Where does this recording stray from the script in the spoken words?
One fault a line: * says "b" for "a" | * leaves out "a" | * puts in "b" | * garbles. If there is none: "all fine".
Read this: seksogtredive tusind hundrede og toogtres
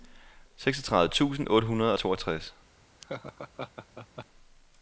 * puts in "otte"